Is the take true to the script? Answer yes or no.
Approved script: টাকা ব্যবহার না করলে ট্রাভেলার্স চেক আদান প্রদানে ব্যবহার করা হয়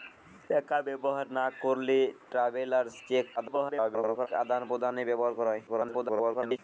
no